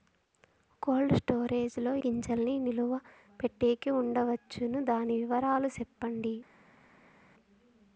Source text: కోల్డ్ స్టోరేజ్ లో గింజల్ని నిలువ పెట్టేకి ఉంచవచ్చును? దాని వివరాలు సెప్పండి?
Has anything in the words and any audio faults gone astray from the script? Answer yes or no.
no